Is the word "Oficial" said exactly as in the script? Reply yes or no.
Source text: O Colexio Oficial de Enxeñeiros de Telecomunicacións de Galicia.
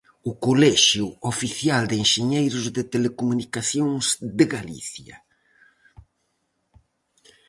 yes